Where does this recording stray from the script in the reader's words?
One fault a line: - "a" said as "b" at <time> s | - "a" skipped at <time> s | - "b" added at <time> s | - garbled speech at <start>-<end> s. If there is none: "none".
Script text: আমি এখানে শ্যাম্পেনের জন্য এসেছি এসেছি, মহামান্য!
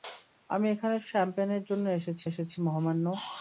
none